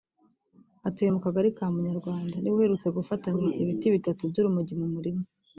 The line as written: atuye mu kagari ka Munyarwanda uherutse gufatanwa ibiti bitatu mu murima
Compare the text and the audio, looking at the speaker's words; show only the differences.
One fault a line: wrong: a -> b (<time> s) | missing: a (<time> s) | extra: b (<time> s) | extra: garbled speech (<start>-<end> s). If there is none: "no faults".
extra: niwe (2.4 s)
extra: by'urumogi (4.3 s)